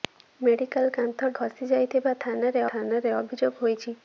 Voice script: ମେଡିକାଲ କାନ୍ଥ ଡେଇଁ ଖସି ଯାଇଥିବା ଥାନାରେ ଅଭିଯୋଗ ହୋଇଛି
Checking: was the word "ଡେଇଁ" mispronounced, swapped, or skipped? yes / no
yes